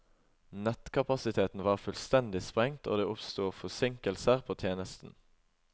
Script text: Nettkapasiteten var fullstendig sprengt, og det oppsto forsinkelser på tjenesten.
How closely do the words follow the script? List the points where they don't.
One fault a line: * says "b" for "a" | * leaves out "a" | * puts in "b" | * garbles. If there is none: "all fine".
all fine